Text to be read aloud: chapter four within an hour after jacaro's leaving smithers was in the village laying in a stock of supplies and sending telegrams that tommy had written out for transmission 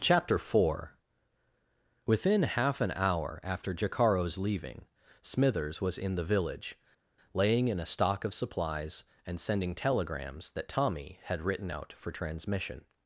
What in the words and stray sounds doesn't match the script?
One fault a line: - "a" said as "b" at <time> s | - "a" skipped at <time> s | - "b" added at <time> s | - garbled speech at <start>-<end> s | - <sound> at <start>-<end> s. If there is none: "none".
- "half" added at 2.4 s